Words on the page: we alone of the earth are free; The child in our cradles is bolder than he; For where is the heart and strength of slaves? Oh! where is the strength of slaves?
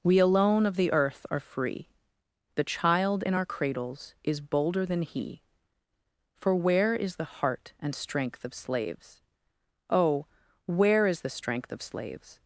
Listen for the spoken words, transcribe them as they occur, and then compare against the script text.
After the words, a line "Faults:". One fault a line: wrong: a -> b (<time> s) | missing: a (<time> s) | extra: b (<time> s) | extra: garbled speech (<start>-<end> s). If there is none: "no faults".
we alone of the earth are free; The child in our cradles is bolder than he; For where is the heart and strength of slaves? Oh! where is the strength of slaves?
Faults:
no faults